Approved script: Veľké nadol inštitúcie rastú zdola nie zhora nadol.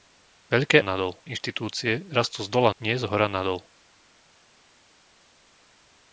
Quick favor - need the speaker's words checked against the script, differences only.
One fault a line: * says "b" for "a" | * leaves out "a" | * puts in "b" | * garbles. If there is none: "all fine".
all fine